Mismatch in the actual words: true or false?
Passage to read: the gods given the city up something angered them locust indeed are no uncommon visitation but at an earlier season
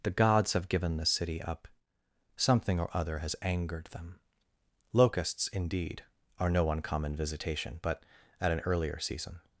true